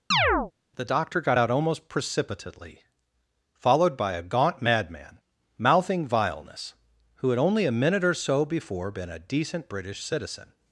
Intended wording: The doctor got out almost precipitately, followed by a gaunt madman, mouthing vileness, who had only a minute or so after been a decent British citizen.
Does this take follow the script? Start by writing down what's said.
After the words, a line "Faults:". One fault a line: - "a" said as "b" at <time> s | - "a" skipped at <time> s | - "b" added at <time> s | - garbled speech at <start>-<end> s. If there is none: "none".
The doctor got out almost precipitately, followed by a gaunt madman, mouthing vileness, who had only a minute or so before been a decent British citizen.
Faults:
- "after" said as "before" at 8.5 s